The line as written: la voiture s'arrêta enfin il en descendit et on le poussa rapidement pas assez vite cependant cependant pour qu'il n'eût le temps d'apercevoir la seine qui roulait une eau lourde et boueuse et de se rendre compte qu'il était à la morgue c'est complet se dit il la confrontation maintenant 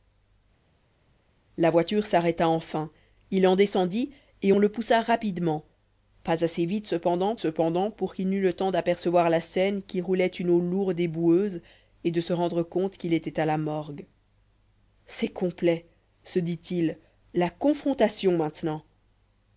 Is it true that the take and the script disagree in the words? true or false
false